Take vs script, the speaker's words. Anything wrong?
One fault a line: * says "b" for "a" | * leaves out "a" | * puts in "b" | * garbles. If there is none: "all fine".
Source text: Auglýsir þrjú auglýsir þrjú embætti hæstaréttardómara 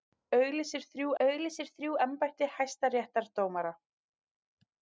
all fine